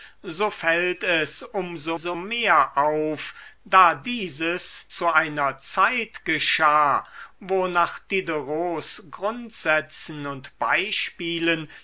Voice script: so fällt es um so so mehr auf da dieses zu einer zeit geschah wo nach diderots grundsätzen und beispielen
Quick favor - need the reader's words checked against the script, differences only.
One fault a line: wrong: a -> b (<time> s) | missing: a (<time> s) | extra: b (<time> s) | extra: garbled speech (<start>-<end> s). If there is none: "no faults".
no faults